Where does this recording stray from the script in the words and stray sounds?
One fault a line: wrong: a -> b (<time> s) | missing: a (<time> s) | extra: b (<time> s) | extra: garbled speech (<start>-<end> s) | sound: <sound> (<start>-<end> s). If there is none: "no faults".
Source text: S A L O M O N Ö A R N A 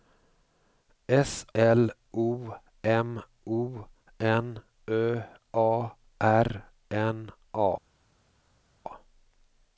missing: A (1.4 s)